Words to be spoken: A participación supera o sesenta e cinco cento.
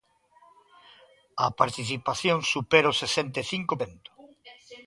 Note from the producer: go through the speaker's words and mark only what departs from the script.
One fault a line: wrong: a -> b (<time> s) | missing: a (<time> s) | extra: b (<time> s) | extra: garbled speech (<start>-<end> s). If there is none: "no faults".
no faults